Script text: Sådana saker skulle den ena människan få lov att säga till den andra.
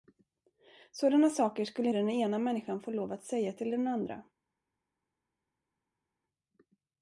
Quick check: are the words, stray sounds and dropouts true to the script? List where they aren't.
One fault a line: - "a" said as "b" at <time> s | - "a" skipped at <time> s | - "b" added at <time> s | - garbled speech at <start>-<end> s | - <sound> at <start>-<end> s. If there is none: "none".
none